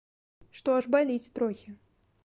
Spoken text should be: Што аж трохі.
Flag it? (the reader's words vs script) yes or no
yes